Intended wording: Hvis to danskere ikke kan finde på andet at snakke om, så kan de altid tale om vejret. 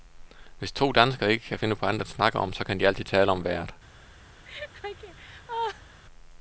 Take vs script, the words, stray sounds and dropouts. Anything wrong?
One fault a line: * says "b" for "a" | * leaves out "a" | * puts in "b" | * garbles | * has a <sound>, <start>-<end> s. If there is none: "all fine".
* has a laugh, 4.4-6.0 s